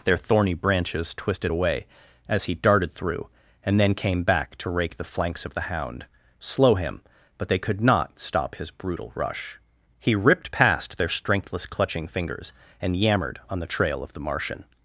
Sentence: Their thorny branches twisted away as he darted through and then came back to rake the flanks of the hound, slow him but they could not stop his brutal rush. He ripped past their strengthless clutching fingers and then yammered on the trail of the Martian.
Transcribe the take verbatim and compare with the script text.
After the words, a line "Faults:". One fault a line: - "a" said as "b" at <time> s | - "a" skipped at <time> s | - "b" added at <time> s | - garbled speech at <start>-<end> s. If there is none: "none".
Their thorny branches twisted away as he darted through and then came back to rake the flanks of the hound, slow him but they could not stop his brutal rush. He ripped past their strengthless clutching fingers and yammered on the trail of the Martian.
Faults:
- "then" skipped at 13.0 s